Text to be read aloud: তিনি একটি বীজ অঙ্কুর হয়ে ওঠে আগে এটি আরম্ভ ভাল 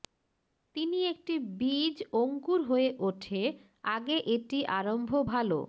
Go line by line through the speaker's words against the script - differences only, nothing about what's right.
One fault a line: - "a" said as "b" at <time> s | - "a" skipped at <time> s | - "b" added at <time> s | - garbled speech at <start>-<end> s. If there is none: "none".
none